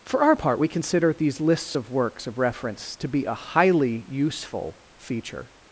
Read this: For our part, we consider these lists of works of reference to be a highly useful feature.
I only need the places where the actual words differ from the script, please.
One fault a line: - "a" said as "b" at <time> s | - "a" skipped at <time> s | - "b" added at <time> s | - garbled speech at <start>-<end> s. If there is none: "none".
none